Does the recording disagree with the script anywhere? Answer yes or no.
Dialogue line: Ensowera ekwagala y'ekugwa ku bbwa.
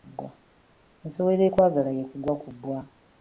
no